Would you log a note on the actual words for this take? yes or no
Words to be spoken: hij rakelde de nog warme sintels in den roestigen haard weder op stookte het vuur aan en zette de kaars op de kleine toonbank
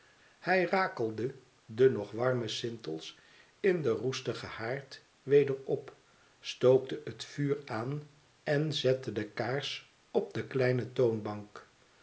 no